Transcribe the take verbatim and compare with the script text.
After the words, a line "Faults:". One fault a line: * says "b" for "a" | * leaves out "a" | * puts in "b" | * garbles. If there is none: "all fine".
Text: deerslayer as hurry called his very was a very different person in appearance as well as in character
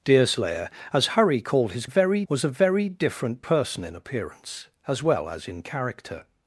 deerslayer as hurry called his very was a very different person in appearance as well as in character
Faults:
all fine